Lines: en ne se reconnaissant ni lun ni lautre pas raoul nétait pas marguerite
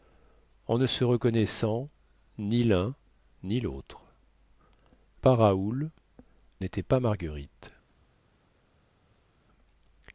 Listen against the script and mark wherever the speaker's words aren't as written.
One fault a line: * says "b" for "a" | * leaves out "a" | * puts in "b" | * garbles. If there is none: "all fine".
all fine